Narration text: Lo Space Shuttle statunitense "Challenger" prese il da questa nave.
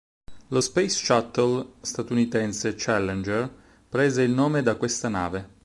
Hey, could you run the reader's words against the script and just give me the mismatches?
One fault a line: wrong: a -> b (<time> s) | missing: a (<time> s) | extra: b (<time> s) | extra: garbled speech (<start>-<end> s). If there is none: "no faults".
extra: nome (4.3 s)